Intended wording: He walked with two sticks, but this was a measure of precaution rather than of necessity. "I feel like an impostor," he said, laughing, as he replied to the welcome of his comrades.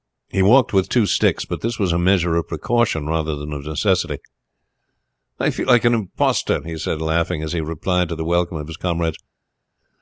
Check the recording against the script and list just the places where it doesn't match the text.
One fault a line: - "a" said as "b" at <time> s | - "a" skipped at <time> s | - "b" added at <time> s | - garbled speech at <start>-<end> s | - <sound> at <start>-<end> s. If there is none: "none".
none